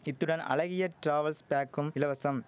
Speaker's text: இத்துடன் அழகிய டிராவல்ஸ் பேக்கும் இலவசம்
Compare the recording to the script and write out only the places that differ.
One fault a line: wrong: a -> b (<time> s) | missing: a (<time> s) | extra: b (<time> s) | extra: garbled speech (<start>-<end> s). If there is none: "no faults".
no faults